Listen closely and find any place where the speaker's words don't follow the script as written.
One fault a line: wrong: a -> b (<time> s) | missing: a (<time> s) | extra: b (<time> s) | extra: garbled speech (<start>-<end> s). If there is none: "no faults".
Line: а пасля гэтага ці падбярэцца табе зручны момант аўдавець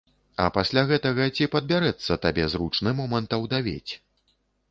no faults